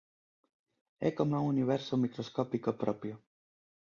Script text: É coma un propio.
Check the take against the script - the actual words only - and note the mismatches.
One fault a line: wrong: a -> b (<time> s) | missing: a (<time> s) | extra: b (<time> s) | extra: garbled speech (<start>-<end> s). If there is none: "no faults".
extra: universo microscópico (1.6 s)